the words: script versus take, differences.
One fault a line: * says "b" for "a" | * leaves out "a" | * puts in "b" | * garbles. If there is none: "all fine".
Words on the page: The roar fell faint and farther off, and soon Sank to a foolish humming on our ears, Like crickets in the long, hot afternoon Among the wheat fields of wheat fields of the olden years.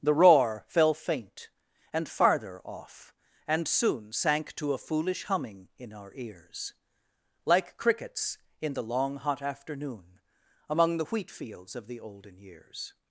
* says "in" for "on"
* leaves out "wheat fields of"